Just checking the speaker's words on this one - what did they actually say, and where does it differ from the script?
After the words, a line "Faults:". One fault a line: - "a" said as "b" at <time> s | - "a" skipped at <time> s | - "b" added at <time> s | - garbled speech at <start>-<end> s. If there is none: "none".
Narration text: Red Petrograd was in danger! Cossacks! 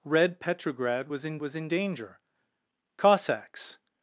Red Petrograd was in was in danger! Cossacks!
Faults:
- "was in" added at 1.4 s